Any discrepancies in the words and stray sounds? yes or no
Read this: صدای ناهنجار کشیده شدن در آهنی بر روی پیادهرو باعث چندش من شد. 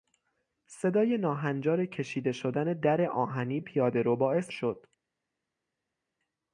yes